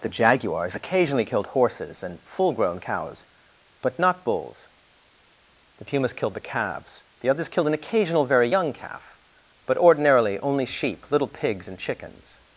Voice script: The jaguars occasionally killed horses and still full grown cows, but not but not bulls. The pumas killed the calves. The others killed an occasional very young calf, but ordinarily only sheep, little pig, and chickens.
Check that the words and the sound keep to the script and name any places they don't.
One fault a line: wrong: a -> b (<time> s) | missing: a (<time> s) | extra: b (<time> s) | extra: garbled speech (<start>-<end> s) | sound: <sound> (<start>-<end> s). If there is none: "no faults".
missing: still (2.2 s)
missing: but not (4.2 s)
wrong: pig -> pigs (11.3 s)